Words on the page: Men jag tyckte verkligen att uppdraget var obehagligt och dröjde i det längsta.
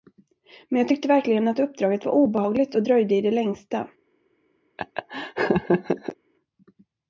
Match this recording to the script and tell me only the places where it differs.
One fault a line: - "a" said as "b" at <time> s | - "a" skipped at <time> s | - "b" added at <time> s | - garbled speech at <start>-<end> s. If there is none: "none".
none